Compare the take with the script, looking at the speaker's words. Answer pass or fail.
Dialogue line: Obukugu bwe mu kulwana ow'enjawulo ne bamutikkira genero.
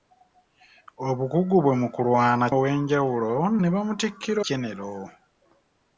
pass